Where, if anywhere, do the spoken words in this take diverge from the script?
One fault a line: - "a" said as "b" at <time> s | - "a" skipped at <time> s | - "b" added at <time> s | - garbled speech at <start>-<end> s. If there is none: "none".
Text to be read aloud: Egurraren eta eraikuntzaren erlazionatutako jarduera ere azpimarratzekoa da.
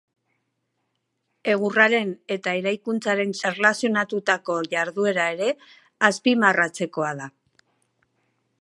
none